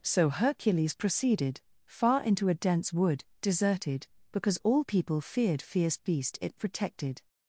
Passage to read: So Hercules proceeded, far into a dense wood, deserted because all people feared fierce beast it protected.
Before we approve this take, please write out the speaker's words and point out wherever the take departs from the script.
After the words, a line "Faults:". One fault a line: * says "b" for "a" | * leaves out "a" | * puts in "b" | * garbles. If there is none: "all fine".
So Hercules proceeded, far into a dense wood, deserted because all people feared fierce beast it protected.
Faults:
all fine